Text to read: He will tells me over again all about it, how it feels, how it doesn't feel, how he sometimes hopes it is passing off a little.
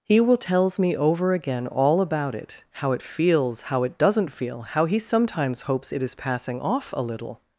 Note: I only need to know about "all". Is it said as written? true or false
true